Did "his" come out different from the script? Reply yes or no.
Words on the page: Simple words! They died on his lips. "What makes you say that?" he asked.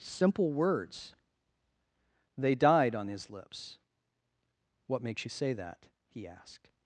no